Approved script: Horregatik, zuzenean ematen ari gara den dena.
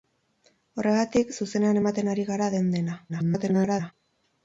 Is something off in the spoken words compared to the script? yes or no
yes